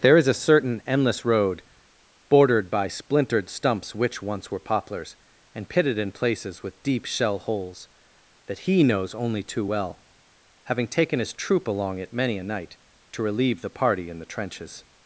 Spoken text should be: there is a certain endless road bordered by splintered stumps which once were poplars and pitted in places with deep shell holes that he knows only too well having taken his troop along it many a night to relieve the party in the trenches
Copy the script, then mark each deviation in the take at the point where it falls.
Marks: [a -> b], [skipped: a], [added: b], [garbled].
there is a certain endless road bordered by splintered stumps which once were poplars and pitted in places with deep shell holes that he knows only too well having taken his troop along it many a night to relieve the party in the trenches